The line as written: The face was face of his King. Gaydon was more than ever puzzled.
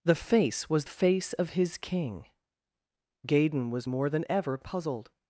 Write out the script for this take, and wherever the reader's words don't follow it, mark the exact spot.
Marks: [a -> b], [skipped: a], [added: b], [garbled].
The face was face of his King. Gaydon was more than ever puzzled.